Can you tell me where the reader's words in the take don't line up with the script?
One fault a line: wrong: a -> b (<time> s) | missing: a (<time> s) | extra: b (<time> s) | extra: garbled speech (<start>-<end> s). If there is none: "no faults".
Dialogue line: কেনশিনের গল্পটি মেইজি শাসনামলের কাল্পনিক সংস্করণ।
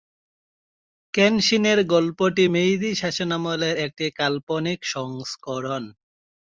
extra: একটি (3.8 s)